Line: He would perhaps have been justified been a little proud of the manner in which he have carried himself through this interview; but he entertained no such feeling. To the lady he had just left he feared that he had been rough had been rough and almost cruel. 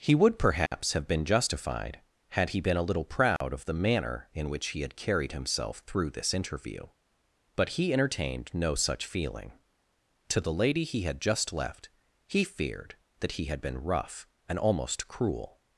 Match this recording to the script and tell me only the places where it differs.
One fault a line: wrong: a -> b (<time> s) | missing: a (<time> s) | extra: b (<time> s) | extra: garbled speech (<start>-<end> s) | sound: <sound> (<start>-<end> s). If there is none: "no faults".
sound: dropout (0.7-0.7 s)
extra: had he (2.3 s)
sound: dropout (3.4-3.4 s)
wrong: have -> had (4.8 s)
missing: had been rough (14.2 s)